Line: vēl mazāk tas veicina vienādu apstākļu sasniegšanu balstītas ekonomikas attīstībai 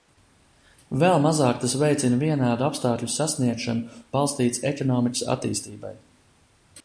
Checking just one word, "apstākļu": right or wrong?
right